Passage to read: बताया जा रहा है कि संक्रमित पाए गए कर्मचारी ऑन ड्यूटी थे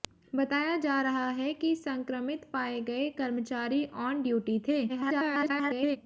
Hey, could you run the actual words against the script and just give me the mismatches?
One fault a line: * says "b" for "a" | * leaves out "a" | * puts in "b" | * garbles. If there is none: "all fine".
* garbles